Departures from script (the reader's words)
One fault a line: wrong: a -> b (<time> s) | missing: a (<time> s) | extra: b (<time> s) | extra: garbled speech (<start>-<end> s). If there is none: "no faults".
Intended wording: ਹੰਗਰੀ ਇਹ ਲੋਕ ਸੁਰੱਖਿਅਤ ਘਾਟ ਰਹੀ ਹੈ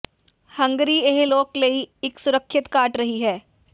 extra: ਲਈ ਇੱਕ (1.6 s)